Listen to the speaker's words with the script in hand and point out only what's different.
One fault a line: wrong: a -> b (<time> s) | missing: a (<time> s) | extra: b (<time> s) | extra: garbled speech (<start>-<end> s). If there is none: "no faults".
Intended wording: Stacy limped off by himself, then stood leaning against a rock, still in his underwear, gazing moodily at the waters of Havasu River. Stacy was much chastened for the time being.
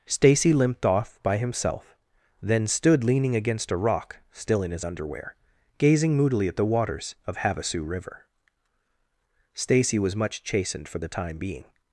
no faults